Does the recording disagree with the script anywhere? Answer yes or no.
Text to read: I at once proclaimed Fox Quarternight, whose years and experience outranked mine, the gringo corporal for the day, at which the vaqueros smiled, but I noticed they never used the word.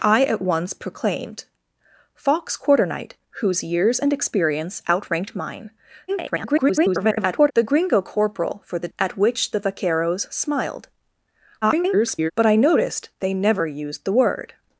yes